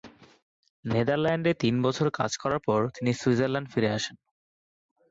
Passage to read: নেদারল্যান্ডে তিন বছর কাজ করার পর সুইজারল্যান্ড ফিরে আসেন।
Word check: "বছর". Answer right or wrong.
right